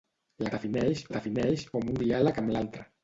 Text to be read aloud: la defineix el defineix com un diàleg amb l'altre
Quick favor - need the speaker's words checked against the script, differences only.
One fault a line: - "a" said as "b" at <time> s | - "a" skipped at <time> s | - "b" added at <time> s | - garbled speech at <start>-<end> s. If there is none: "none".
none